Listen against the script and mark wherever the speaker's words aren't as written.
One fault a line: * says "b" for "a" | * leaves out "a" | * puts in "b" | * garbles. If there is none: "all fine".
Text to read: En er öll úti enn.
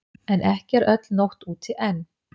* puts in "ekki"
* puts in "nótt"